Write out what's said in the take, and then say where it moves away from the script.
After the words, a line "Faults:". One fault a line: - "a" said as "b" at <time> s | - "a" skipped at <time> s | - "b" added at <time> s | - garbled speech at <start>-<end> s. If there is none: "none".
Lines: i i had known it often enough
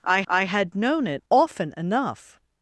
i i had known it often enough
Faults:
none